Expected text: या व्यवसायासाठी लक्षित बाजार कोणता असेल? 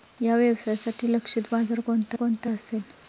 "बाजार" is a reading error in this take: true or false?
false